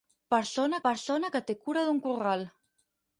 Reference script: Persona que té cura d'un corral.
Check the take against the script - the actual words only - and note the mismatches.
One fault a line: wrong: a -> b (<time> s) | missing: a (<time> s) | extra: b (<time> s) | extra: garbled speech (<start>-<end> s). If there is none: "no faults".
extra: persona (0.9 s)